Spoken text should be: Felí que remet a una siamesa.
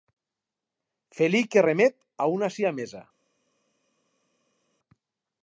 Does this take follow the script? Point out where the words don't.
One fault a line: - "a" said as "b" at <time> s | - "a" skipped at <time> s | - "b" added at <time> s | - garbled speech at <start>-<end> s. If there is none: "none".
none